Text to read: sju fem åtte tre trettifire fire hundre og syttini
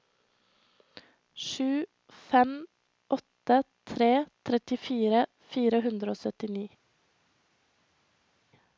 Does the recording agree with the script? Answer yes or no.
yes